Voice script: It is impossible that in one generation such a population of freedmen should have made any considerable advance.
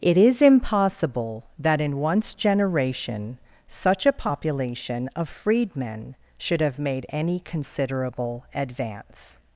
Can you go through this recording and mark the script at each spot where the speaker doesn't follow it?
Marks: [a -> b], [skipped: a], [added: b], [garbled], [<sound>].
It is impossible that in [one -> once] generation such a population of freedmen should have made any considerable advance.